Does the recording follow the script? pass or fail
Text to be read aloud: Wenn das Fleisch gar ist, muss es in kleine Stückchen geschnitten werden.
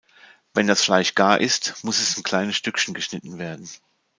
pass